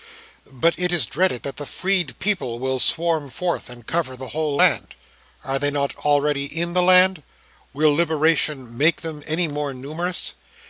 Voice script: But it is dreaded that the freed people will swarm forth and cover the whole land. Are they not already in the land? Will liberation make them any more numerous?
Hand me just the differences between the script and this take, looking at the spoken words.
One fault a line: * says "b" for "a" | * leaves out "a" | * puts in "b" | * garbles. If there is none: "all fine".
all fine